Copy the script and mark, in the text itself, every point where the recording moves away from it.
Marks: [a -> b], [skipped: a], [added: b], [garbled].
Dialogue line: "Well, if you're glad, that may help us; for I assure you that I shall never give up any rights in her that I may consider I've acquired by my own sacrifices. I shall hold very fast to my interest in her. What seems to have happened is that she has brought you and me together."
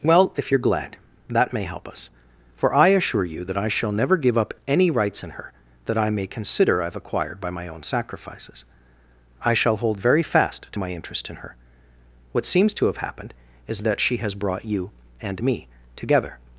"Well, if you're glad, that may help us; for I assure you that I shall never give up any rights in her that I may consider I've acquired by my own sacrifices. I shall hold very fast to my interest in her. What seems to have happened is that she has brought you and me together."